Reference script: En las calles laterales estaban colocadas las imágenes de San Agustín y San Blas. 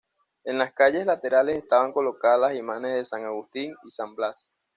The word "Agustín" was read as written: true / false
true